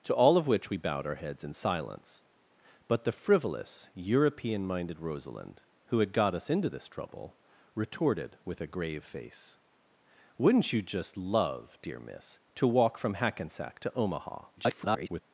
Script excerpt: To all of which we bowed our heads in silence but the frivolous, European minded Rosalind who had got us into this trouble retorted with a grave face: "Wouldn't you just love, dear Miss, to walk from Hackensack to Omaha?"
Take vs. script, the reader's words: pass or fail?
fail